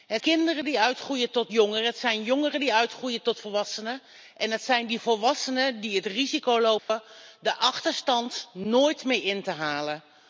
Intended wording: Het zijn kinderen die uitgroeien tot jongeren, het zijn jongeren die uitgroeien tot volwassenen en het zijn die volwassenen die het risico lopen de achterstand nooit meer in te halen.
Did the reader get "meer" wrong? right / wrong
right